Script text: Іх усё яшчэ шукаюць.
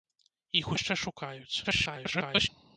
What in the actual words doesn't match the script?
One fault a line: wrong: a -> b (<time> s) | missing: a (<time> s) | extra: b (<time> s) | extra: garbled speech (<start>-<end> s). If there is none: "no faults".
missing: усё (0.7 s)
extra: garbled speech (1.6-2.5 s)